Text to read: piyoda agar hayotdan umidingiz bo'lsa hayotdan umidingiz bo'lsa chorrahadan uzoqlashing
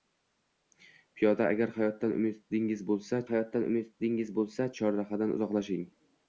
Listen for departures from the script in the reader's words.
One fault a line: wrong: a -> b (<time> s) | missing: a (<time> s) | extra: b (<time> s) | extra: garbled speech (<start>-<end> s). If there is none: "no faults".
no faults